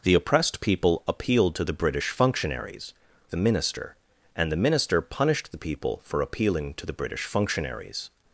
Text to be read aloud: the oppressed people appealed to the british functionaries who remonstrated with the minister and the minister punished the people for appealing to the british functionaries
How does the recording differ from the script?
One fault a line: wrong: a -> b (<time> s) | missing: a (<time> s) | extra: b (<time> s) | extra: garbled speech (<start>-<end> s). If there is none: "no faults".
missing: who remonstrated with (2.9 s)